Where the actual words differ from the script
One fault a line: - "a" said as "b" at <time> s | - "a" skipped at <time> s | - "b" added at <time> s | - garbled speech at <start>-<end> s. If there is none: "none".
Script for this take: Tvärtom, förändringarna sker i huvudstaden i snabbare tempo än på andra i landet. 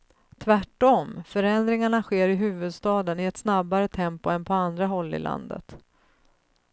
- "ett" added at 3.2 s
- "håll" added at 4.9 s